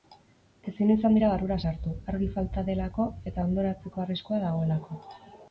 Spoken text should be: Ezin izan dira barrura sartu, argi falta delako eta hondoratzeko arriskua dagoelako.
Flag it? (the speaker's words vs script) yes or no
no